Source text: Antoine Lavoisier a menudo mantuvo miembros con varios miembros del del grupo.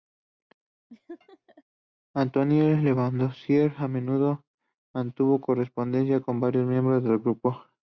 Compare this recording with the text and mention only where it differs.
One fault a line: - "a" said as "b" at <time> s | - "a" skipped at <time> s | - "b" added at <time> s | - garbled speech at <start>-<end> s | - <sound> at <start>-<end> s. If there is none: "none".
- laugh at 0.9-1.6 s
- "miembros" said as "correspondencia" at 5.4 s
- "del" skipped at 7.2 s